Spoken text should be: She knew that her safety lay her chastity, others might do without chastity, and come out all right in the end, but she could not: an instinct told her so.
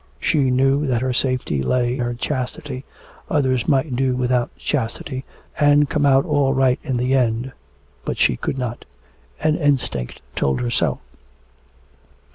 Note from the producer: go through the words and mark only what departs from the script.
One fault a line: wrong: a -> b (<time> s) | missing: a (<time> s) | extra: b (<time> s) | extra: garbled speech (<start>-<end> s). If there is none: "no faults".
no faults